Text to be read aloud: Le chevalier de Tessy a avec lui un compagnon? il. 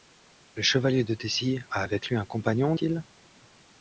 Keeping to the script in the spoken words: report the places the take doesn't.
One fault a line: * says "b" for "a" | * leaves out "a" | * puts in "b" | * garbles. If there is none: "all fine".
all fine